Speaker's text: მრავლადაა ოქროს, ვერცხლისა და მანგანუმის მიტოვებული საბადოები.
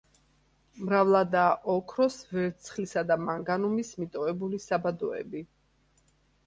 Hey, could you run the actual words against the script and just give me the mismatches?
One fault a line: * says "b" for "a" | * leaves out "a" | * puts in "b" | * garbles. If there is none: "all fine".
all fine